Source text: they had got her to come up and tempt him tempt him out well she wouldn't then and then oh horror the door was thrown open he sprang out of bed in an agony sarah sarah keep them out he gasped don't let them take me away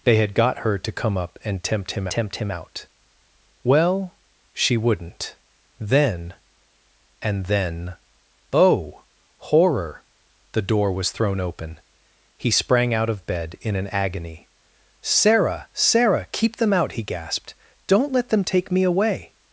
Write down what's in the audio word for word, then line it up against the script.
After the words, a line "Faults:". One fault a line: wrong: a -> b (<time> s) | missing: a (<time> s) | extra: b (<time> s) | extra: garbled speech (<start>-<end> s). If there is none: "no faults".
they had got her to come up and tempt him tempt him out well she wouldn't then and then oh horror the door was thrown open he sprang out of bed in an agony sarah sarah keep them out he gasped don't let them take me away
Faults:
no faults